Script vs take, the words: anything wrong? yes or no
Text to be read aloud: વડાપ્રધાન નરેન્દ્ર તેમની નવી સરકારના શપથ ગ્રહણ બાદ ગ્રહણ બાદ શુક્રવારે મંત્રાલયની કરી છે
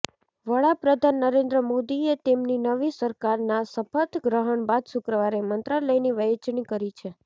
yes